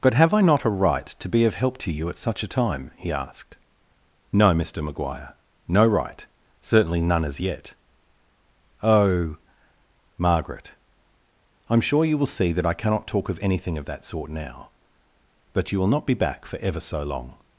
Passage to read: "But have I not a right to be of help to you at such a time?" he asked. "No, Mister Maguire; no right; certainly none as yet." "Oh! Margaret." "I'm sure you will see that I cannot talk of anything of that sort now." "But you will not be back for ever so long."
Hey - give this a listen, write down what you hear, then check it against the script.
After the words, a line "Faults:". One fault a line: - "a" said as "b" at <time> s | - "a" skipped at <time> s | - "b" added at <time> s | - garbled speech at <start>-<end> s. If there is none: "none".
"But have I not a right to be of help to you at such a time?" he asked. "No, Mister Maguire; no right; certainly none as yet." "Oh! Margaret." "I'm sure you will see that I cannot talk of anything of that sort now." "But you will not be back for ever so long."
Faults:
none